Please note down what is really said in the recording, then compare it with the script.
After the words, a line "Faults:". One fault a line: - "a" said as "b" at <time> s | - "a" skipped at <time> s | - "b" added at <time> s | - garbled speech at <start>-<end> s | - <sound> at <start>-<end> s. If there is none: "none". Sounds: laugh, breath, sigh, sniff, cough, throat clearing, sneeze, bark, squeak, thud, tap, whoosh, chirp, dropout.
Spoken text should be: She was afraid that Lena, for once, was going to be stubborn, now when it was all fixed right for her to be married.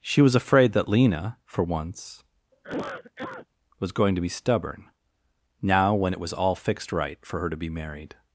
She was afraid that Lena, for once, was going to be stubborn, now when it was all fixed right for her to be married.
Faults:
- cough at 2.5-3.5 s